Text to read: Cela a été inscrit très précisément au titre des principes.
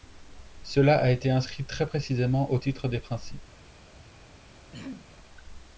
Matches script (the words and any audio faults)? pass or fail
fail